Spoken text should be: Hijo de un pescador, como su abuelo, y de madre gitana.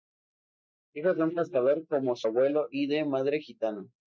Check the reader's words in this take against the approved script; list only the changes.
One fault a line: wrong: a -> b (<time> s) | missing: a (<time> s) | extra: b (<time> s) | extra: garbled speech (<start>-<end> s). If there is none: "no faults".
no faults